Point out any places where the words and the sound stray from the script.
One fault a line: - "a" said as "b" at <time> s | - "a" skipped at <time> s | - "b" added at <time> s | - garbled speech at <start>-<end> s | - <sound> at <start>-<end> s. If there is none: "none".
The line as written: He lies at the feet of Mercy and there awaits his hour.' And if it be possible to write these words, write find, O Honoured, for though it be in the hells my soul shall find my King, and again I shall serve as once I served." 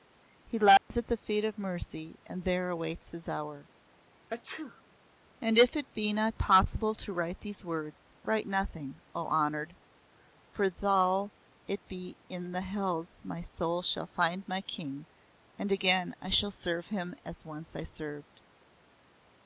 - dropout at 0.8-0.9 s
- sneeze at 4.3-4.8 s
- "not" added at 6.1 s
- "find" said as "nothing" at 8.5 s
- "him" added at 16.9 s